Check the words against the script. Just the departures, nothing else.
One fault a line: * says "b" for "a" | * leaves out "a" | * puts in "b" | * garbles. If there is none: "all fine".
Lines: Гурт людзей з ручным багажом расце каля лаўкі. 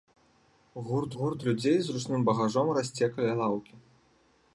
* puts in "гурт"